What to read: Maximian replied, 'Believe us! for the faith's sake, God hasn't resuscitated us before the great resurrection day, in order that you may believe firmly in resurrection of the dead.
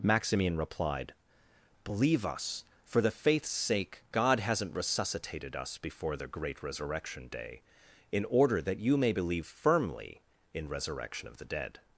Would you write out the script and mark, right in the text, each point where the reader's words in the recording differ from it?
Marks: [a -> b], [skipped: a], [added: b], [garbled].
Maximian replied, 'Believe us! for the faith's sake, God hasn't resuscitated us before the great resurrection day, in order that you may believe firmly in resurrection of the dead.